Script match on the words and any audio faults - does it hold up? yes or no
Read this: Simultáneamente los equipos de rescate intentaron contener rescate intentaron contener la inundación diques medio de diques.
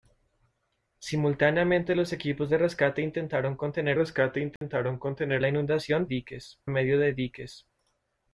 no